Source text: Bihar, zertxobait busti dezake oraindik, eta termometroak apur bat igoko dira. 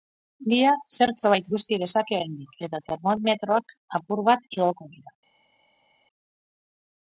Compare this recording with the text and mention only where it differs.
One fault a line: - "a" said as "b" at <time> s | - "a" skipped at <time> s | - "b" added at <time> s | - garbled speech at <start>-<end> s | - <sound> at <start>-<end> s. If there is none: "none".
none